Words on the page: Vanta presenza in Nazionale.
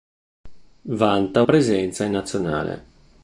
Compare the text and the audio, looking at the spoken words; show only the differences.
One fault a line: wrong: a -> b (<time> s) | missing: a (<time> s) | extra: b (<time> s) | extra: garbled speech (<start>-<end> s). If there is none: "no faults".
no faults